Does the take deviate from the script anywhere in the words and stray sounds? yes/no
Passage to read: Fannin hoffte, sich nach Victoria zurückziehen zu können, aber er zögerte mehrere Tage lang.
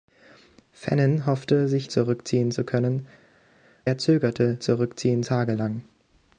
yes